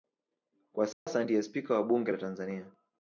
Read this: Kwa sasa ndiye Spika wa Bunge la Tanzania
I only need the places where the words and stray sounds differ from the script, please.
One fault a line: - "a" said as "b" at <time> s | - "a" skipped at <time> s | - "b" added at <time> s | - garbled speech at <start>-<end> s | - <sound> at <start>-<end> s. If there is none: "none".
- dropout at 0.9-1.1 s